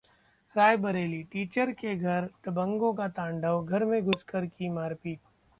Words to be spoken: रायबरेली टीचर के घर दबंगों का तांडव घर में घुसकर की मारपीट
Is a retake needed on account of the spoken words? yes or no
no